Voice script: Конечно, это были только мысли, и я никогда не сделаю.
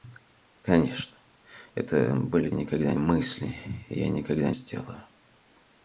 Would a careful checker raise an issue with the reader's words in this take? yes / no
yes